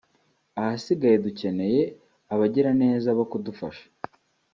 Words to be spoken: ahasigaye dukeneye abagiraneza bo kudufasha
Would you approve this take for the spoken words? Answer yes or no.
yes